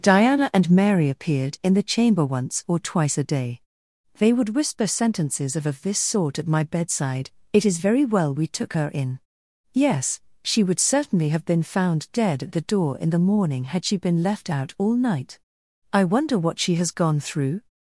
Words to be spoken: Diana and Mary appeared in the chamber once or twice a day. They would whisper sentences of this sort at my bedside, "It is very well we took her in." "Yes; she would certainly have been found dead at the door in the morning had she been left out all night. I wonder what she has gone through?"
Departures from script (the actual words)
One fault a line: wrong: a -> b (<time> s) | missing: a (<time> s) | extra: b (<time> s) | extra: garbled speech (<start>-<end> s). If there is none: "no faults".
extra: of (5.7 s)